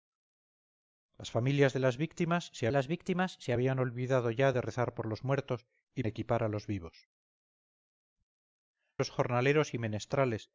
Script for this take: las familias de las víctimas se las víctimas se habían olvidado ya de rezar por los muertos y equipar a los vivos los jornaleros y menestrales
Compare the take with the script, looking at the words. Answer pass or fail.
pass